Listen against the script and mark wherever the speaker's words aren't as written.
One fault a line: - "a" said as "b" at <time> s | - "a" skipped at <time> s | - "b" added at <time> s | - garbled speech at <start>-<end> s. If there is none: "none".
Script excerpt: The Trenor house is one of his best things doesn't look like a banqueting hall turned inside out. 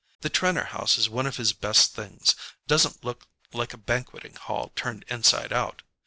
none